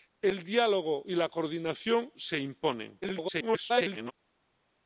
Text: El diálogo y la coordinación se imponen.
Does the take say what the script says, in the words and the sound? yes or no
no